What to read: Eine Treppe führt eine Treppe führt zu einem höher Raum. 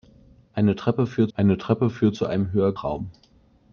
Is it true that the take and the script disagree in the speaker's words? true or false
false